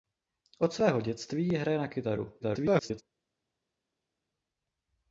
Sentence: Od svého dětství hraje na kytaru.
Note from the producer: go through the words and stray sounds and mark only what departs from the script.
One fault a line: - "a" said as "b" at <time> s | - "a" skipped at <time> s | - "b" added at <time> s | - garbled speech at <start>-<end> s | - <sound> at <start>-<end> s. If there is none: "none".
- garbled speech at 2.4-3.0 s